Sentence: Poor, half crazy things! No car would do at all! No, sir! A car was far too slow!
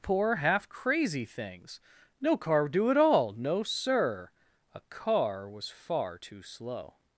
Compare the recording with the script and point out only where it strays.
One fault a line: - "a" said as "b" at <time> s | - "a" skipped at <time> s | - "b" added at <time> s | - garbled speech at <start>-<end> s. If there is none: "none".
none